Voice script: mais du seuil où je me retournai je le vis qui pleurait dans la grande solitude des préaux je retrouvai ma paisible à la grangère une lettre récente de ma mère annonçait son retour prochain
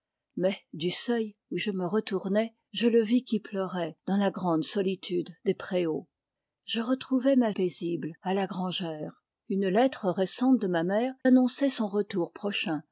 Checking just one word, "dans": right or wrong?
right